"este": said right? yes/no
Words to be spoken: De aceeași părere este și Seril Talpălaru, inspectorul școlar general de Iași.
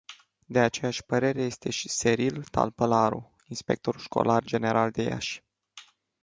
yes